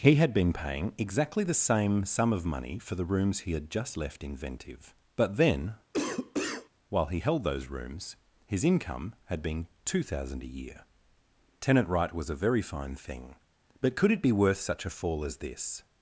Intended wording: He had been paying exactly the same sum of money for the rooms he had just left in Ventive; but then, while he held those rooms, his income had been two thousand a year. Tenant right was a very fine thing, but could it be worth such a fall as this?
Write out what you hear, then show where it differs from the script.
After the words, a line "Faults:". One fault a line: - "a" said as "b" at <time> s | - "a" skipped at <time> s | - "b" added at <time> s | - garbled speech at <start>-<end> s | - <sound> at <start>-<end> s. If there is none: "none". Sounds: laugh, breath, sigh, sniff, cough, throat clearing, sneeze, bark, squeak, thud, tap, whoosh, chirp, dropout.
He had been paying exactly the same sum of money for the rooms he had just left in Ventive; but then, while he held those rooms, his income had been two thousand a year. Tenant right was a very fine thing, but could it be worth such a fall as this?
Faults:
- cough at 5.9-6.7 s